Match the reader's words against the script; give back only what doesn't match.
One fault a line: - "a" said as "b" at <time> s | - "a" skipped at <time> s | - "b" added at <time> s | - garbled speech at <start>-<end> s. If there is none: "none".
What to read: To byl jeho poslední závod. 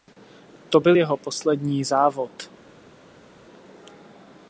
none